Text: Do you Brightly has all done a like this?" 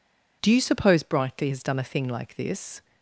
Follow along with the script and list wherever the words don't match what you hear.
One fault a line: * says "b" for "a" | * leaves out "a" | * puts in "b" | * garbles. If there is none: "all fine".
* puts in "suppose"
* leaves out "all"
* puts in "thing"